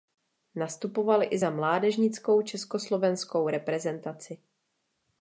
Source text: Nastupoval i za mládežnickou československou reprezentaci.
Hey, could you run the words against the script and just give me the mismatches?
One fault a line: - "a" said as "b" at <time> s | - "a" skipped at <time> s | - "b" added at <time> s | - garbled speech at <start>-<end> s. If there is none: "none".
none